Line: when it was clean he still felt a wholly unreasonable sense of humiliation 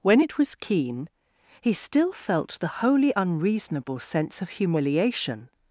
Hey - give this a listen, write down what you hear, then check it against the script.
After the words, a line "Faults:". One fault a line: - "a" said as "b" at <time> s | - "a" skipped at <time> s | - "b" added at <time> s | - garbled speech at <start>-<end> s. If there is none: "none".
when it was keen he still felt the wholly unreasonable sense of humiliation
Faults:
- "clean" said as "keen" at 0.6 s
- "a" said as "the" at 2.6 s